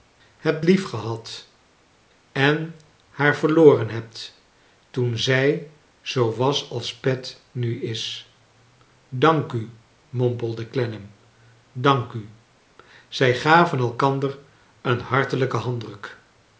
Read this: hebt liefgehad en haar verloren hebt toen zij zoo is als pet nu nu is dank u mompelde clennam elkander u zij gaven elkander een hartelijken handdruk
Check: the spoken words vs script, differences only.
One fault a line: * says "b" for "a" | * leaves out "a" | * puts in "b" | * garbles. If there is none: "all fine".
* says "was" for "is"
* leaves out "nu"
* says "dank" for "elkander"